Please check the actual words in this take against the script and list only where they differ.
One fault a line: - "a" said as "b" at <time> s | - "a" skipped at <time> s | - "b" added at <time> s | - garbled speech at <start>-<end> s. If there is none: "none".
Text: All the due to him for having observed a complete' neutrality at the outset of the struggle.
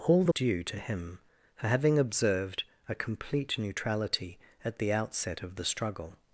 none